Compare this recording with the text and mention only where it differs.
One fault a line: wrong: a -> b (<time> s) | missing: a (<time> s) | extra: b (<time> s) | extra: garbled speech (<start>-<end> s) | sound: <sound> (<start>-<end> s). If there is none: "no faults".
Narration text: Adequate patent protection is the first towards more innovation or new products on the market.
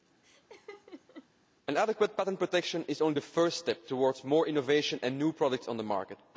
sound: laugh (0.2-1.3 s)
extra: only (3.0 s)
extra: step (3.6 s)
wrong: or -> and (5.0 s)